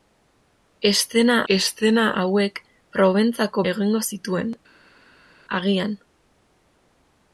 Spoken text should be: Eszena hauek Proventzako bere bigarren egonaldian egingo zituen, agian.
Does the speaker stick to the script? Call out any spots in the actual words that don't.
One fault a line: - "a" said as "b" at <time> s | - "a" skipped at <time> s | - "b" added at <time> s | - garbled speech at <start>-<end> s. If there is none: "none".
- "eszena" added at 1.5 s
- "bere bigarren egonaldian" skipped at 3.6 s